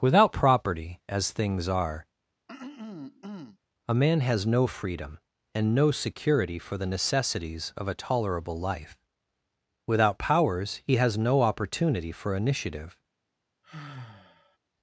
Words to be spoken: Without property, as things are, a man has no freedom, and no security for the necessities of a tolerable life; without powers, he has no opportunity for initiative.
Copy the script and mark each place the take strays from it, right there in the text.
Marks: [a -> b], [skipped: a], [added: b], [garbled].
Without property, as things are, a man has no freedom, and no security for the necessities of a tolerable life; without powers, he has no opportunity for initiative.